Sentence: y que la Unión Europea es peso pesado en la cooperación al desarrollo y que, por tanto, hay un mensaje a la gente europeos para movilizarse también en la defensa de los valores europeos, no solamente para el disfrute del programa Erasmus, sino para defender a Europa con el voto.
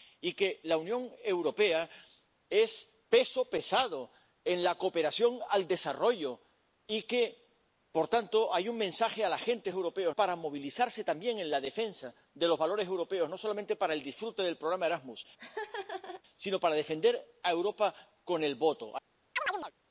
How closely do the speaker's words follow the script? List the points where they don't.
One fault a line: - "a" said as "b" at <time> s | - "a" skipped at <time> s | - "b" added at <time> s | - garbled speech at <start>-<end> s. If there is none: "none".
none